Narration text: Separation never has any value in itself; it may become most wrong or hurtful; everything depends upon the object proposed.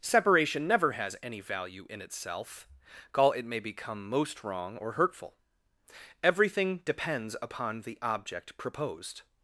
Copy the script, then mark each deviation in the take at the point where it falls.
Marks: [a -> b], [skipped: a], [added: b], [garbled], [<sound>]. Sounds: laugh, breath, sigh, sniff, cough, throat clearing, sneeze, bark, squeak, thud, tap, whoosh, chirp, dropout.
Separation never has any value in itself; [added: call] it may become most wrong or hurtful; everything depends upon the object proposed.